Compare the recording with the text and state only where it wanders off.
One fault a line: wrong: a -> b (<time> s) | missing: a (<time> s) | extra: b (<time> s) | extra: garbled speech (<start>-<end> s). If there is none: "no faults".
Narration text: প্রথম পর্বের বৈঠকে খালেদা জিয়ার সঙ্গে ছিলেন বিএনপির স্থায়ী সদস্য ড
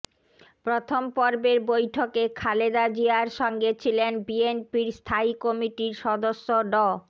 extra: কমিটির (5.4 s)